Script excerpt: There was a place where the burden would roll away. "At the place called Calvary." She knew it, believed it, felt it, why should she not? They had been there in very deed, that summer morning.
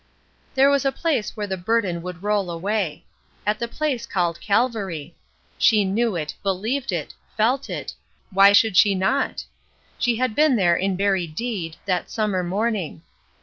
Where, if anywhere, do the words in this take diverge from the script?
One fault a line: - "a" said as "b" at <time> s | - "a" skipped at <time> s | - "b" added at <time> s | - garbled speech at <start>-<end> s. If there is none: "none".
- "They" said as "She" at 10.0 s